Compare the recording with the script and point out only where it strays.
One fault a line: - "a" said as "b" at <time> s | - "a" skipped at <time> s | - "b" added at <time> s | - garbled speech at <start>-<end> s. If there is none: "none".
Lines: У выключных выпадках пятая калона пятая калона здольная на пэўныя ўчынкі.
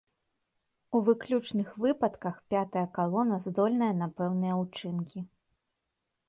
- "пятая калона" skipped at 3.4 s